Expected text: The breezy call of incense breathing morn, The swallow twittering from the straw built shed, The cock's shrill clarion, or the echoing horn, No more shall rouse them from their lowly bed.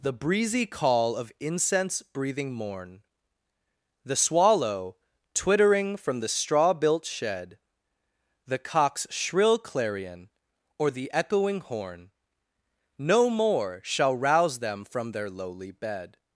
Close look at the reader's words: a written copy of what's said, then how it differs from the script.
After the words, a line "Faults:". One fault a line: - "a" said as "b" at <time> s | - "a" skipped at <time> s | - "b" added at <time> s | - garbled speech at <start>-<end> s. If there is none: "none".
The breezy call of incense breathing morn, The swallow twittering from the straw built shed, The cock's shrill clarion, or the echoing horn, No more shall rouse them from their lowly bed.
Faults:
none